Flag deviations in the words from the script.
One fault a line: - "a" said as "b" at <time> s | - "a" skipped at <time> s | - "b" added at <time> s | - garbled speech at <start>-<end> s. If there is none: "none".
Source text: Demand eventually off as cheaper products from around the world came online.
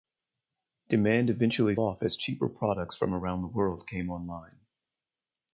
none